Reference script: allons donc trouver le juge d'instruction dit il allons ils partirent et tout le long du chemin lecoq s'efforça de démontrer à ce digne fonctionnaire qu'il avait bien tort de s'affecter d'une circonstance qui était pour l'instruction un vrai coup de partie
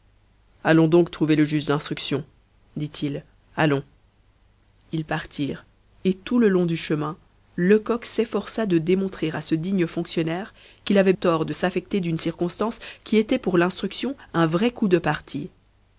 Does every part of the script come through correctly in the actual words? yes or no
no